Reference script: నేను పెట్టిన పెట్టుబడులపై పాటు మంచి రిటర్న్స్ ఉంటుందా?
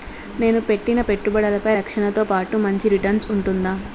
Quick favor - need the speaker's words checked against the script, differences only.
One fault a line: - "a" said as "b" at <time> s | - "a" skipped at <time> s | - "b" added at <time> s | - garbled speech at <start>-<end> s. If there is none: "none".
- "రక్షణతో" added at 1.7 s